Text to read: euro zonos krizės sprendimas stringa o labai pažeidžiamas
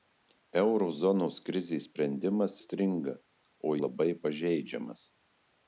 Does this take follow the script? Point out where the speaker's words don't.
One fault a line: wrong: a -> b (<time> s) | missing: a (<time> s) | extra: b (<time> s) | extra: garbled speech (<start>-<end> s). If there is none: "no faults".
no faults